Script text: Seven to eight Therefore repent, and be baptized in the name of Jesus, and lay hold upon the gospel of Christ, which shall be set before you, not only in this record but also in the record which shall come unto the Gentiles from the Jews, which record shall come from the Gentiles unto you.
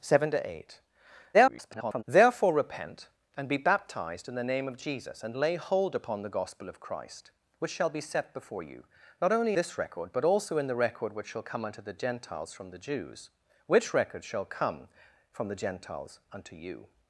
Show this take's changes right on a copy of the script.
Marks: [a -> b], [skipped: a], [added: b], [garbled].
Seven to eight [garbled] Therefore repent, and be baptized in the name of Jesus, and lay hold upon the gospel of Christ, which shall be set before you, not only [skipped: in] this record but also in the record which shall come unto the Gentiles from the Jews, which record shall come from the Gentiles unto you.